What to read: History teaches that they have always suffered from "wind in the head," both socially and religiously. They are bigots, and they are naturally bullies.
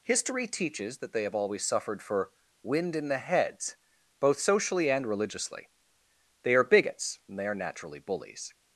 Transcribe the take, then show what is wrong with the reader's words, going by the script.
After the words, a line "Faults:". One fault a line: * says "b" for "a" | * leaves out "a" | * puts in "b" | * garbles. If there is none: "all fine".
History teaches that they have always suffered for "wind in the heads," both socially and religiously. They are bigots, and they are naturally bullies.
Faults:
* says "for" for "from"
* says "heads" for "head"